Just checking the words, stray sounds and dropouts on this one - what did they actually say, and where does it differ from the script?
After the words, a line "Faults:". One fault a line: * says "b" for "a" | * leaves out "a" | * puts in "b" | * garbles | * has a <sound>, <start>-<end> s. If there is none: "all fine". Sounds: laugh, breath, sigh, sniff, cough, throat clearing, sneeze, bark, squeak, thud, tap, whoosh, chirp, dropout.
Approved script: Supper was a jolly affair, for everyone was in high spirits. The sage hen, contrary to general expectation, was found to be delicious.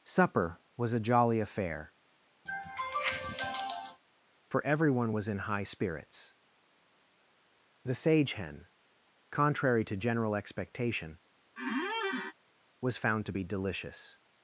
Supper was a jolly affair, for everyone was in high spirits. The sage hen, contrary to general expectation, was found to be delicious.
Faults:
* has a sniff, 2.5-4.0 s
* has a squeak, 11.6-12.3 s